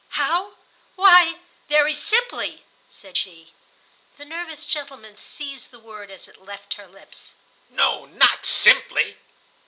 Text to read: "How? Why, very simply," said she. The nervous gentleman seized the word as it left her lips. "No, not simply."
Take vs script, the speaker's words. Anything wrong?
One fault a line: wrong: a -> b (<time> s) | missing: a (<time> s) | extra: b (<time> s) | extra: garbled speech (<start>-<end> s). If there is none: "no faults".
no faults